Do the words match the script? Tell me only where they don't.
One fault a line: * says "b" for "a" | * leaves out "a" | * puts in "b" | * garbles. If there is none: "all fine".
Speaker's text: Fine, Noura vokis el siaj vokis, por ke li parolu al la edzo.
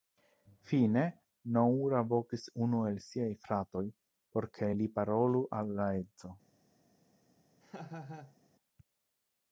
* puts in "unu"
* says "fratoj" for "vokis"